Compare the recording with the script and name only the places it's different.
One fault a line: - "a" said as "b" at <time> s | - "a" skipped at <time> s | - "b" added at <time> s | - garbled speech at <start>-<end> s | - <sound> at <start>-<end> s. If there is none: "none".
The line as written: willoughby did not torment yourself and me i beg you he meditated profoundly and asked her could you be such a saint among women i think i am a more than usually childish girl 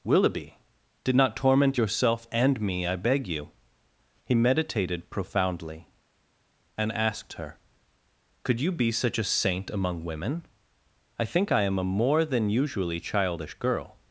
none